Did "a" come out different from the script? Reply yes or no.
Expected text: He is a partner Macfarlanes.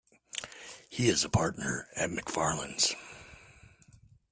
no